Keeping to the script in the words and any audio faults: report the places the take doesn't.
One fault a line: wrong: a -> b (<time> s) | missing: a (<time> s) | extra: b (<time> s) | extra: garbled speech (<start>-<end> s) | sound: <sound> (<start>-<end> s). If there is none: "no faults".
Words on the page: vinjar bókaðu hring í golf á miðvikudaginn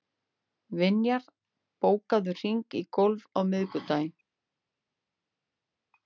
no faults